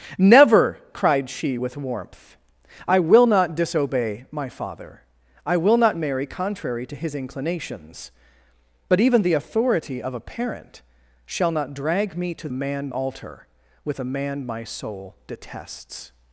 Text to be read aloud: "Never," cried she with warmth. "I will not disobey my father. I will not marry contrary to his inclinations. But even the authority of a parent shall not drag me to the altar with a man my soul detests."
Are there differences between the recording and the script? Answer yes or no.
yes